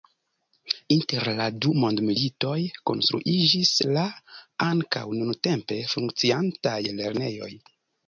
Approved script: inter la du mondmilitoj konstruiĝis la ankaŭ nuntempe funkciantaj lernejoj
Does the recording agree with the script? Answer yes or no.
yes